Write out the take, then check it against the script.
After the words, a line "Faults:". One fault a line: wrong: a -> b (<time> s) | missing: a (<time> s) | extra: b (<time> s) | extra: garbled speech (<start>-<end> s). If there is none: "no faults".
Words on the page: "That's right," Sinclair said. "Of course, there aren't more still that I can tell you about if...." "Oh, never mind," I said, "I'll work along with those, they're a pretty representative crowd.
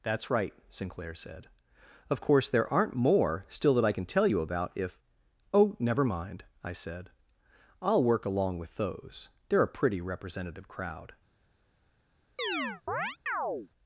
"That's right," Sinclair said. "Of course, there aren't more still that I can tell you about if...." "Oh, never mind," I said, "I'll work along with those, they're a pretty representative crowd.
Faults:
no faults